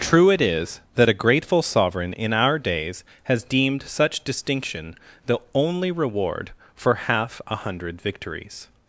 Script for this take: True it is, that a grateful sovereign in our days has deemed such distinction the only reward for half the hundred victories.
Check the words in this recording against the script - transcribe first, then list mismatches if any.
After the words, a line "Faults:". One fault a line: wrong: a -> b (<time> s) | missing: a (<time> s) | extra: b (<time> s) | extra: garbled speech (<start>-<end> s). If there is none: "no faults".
True it is, that a grateful sovereign in our days has deemed such distinction the only reward for half a hundred victories.
Faults:
wrong: the -> a (7.5 s)